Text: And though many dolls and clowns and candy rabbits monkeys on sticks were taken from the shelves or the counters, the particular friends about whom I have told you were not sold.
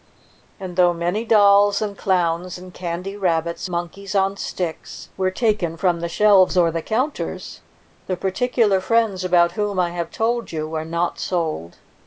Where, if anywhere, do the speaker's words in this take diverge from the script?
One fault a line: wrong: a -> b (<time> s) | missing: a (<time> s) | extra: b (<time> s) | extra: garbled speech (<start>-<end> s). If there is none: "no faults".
no faults